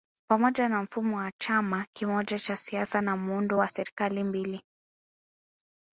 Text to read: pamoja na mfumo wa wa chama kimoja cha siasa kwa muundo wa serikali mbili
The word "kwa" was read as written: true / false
false